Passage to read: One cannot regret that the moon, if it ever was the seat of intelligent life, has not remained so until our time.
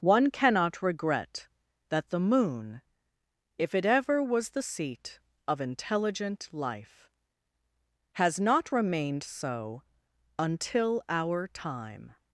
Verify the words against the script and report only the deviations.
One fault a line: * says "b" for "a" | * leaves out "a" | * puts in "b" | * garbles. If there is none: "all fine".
all fine